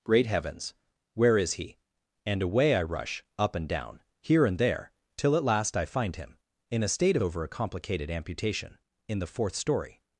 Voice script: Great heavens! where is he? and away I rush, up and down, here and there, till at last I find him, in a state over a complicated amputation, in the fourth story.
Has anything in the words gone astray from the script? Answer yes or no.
no